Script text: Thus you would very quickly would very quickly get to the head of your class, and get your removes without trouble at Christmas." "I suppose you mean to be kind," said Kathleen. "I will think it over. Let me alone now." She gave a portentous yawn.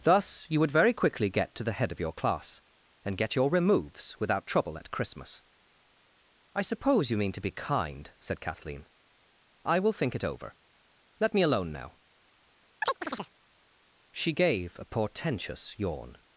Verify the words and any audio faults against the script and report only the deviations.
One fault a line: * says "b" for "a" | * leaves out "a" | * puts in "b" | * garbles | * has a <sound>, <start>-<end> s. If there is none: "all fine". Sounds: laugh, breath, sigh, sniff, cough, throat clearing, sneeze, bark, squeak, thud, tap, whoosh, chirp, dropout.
* leaves out "would very quickly"
* has a chirp, 12.8-13.3 s